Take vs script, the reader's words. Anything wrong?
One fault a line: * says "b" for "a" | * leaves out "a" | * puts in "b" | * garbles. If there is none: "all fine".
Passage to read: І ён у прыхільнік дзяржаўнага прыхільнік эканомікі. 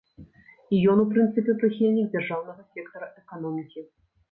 * puts in "прынцыпе"
* says "сектара" for "прыхільнік"